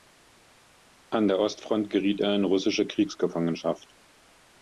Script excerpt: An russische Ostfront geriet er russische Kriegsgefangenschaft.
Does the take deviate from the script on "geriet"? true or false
false